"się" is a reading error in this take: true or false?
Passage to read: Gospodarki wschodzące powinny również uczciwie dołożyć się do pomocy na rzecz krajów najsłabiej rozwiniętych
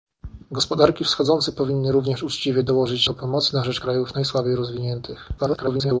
true